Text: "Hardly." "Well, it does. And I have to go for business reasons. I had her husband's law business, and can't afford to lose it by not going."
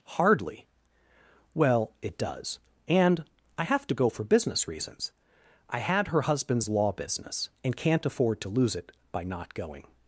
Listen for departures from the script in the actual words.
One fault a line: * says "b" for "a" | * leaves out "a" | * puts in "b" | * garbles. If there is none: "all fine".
all fine